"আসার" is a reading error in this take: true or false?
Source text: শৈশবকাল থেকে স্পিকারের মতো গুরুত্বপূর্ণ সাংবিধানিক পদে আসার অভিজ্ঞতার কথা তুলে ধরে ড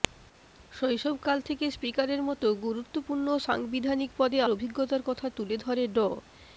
true